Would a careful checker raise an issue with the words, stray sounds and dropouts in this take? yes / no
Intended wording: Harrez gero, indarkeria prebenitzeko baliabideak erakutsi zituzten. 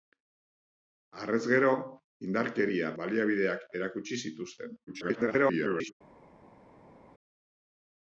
yes